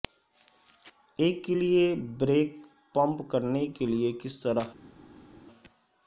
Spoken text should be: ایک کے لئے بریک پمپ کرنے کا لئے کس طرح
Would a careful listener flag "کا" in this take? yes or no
yes